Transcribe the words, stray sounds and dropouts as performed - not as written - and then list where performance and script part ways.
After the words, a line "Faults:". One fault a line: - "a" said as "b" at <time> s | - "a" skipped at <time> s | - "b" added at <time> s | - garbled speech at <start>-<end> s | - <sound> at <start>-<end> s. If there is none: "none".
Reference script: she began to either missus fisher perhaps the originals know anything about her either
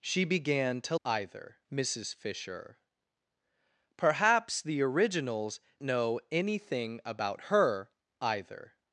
she began to either missus fisher perhaps the originals know anything about her either
Faults:
none